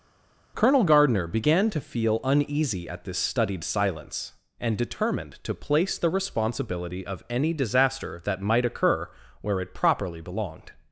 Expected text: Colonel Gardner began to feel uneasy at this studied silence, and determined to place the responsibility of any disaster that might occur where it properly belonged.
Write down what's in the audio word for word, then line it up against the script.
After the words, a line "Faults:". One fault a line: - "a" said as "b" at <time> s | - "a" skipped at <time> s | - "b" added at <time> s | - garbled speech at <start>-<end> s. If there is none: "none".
Colonel Gardner began to feel uneasy at this studied silence, and determined to place the responsibility of any disaster that might occur where it properly belonged.
Faults:
none